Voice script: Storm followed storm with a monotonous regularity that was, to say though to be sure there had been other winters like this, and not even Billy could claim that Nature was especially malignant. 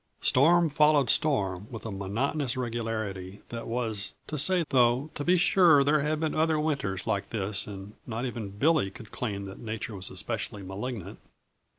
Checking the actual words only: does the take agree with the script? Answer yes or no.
yes